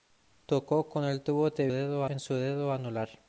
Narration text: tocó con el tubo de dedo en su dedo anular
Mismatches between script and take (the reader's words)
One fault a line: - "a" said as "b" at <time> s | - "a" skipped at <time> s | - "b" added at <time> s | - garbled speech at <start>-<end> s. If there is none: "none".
none